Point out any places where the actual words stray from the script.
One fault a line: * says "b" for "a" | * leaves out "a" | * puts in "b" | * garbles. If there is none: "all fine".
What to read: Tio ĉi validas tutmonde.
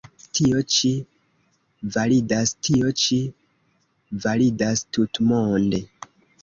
* puts in "tio ĉi validas"